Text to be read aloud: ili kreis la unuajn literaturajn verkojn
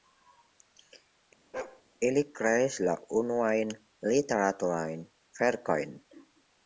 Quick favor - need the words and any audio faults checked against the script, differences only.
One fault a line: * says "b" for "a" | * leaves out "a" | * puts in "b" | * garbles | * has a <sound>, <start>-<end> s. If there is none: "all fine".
* has a bark, 1.5-1.8 s